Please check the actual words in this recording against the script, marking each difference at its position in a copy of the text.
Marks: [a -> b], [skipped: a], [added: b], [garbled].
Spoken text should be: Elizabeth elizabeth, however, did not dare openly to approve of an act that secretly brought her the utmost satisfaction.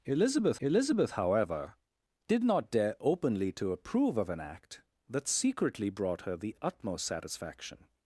Elizabeth elizabeth, however, did not dare openly to approve of an act that secretly brought her the utmost satisfaction.